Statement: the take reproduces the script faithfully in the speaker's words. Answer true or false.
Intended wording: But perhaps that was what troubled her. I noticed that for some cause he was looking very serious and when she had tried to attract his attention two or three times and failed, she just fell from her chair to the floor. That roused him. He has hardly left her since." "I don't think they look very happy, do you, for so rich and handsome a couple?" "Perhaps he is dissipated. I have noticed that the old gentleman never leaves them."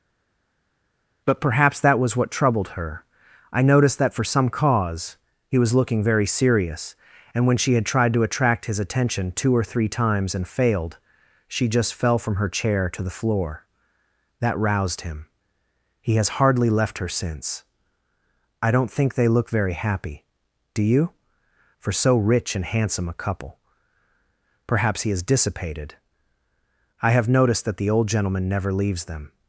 true